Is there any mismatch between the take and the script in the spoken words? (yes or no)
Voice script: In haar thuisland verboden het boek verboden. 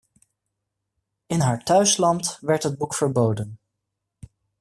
yes